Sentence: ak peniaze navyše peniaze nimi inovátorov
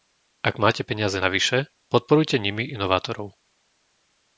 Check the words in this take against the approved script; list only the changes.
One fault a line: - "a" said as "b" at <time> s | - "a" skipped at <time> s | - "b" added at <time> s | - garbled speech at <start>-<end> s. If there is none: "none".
- "máte" added at 0.6 s
- "peniaze" said as "podporujte" at 1.9 s